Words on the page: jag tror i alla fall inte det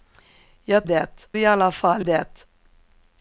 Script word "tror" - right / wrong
wrong